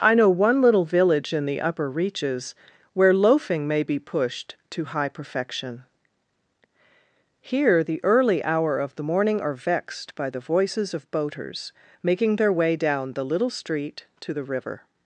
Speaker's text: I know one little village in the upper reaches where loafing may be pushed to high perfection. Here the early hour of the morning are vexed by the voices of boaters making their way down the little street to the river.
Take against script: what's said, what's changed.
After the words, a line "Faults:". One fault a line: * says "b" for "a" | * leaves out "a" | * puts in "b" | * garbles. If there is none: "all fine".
I know one little village in the upper reaches where loafing may be pushed to high perfection. Here the early hour of the morning are vexed by the voices of boaters making their way down the little street to the river.
Faults:
all fine